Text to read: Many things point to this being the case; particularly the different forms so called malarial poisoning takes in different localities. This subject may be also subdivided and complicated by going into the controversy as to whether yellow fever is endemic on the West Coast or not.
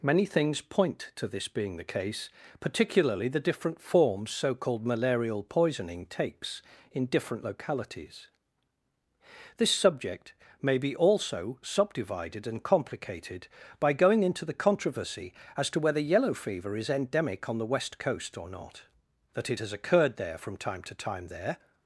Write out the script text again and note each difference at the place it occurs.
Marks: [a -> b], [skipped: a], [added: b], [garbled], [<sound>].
Many things point to this being the case; particularly the different forms so called malarial poisoning takes in different localities. This subject may be also subdivided and complicated by going into the controversy as to whether yellow fever is endemic on the West Coast or not. [added: That it has occurred there from time to time there]